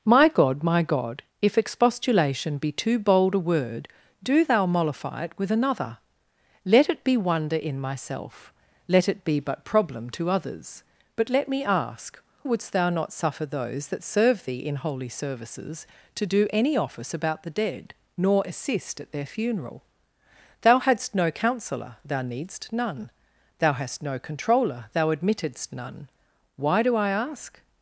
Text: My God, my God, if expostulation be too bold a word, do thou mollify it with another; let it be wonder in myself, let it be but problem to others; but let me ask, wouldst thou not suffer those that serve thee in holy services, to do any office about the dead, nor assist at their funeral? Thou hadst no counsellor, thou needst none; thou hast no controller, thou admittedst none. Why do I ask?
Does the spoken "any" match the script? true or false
true